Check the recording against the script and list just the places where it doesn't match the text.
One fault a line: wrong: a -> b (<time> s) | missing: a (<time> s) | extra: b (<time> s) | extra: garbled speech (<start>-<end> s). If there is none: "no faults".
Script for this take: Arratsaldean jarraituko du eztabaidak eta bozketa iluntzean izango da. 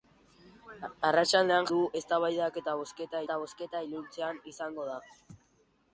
missing: jarraituko (1.7 s)
extra: eta bozketa (3.2 s)